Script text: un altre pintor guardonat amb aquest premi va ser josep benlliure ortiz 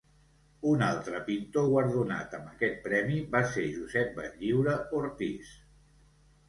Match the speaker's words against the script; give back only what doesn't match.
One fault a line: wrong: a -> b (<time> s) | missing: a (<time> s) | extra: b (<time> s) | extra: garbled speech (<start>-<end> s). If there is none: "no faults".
no faults